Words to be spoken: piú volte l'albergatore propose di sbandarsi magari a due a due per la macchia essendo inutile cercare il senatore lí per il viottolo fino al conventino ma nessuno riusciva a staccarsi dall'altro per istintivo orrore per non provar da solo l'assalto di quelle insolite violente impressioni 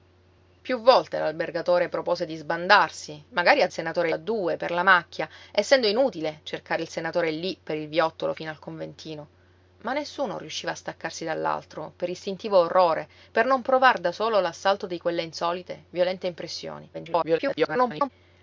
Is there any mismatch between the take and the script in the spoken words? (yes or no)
yes